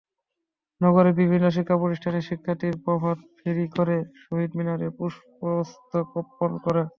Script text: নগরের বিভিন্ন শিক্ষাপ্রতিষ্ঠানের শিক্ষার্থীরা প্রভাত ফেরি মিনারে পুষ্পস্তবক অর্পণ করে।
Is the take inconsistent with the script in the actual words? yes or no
yes